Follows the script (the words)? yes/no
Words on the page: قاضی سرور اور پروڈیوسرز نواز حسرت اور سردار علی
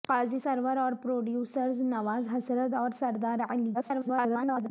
no